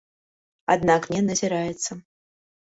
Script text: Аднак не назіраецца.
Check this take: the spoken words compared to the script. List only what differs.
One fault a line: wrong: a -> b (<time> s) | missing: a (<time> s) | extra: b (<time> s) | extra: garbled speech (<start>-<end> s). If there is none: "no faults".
no faults